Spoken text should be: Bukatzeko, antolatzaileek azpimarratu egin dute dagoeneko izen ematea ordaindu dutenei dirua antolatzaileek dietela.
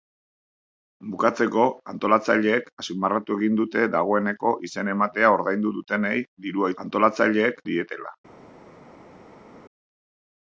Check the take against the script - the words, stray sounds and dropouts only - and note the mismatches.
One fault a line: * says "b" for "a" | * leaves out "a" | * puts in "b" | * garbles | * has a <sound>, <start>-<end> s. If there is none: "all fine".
all fine